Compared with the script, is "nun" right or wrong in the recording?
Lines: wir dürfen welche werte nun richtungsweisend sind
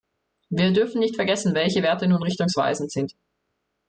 right